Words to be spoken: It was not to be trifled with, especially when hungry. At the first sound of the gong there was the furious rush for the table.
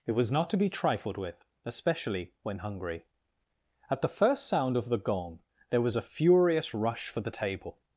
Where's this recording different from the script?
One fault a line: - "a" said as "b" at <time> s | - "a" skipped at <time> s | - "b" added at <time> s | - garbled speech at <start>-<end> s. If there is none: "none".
- "the" said as "a" at 6.0 s